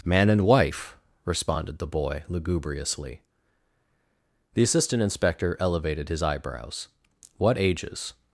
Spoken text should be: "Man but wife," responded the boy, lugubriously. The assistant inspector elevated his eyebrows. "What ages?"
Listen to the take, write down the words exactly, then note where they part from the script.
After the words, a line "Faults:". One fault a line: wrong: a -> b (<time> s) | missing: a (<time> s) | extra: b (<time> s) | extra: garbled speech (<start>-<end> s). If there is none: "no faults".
"Man and wife," responded the boy, lugubriously. The assistant inspector elevated his eyebrows. "What ages?"
Faults:
wrong: but -> and (0.3 s)